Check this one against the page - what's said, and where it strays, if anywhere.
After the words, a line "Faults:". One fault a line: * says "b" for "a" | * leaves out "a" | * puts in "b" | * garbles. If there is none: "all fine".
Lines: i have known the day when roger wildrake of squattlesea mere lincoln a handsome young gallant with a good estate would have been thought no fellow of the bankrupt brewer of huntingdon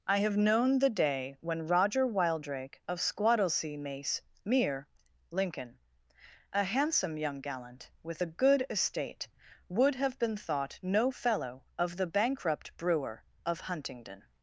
i have known the day when roger wildrake of squattlesea mace mere lincoln a handsome young gallant with a good estate would have been thought no fellow of the bankrupt brewer of huntingdon
Faults:
* puts in "mace"